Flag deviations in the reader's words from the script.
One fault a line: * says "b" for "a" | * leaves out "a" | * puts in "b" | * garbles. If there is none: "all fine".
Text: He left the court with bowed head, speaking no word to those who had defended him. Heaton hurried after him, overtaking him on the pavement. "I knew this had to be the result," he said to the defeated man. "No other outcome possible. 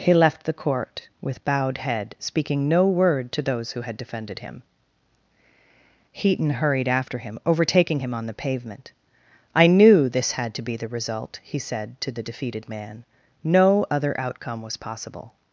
* puts in "was"